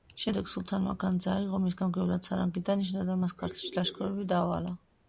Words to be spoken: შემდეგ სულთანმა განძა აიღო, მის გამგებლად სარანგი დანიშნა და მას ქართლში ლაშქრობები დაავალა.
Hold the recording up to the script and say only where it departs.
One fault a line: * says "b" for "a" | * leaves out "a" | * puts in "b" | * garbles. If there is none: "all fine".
all fine